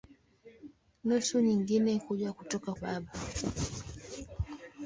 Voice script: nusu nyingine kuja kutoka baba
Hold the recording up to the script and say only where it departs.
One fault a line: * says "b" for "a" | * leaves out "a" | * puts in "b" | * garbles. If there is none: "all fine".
all fine